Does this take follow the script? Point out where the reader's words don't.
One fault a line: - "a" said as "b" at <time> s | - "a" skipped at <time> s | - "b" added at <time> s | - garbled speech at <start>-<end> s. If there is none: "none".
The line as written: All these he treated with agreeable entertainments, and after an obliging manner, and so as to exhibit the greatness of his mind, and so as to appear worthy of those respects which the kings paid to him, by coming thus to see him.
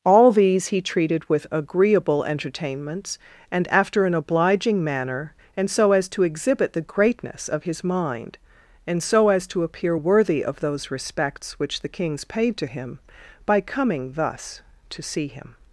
none